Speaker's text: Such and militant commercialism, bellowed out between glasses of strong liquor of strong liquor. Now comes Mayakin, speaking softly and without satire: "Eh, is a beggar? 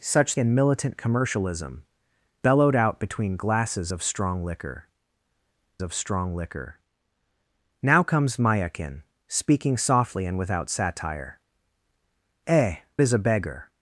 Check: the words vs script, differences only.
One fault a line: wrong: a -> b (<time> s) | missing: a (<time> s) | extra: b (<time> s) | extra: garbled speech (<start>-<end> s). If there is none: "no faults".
no faults